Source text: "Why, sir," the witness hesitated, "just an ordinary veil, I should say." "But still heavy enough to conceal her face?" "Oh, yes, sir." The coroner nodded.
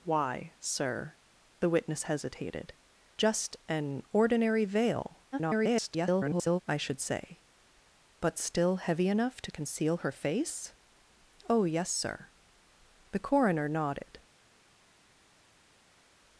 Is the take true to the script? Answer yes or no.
no